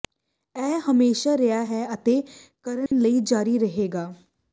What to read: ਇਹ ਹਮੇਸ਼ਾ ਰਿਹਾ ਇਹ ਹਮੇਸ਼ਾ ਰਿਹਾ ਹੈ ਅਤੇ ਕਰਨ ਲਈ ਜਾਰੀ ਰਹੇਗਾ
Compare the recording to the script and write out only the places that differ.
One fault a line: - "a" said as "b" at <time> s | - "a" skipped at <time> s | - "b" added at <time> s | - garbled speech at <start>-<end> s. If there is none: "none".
- "ਇਹ ਹਮੇਸ਼ਾ ਰਿਹਾ" skipped at 1.6 s